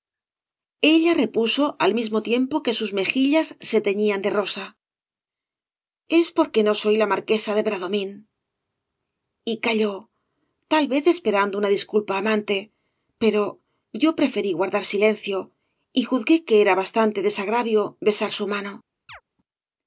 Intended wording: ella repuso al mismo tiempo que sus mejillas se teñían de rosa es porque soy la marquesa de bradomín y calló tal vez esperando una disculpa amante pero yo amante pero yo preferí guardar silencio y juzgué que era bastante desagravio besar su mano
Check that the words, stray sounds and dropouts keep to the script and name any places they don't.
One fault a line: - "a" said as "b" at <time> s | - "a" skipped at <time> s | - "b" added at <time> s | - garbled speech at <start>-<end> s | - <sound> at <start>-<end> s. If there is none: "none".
- "no" added at 6.6 s
- "amante pero yo" skipped at 14.2 s
- chirp at 19.1-19.2 s